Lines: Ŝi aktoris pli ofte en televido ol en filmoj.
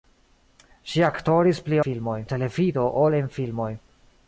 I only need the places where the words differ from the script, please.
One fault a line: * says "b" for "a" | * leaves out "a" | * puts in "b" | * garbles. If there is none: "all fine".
* says "filmoj" for "ofte"